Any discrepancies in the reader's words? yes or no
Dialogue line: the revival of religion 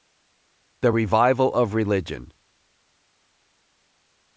no